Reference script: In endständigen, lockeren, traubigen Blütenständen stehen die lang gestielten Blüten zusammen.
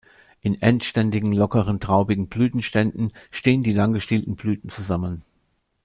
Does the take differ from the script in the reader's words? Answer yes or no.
no